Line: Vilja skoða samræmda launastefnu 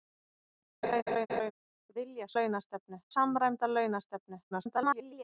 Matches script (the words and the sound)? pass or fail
fail